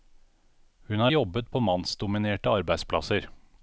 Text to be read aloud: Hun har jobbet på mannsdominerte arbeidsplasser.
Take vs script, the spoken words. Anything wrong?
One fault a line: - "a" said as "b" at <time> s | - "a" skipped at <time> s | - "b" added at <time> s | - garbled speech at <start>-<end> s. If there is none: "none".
none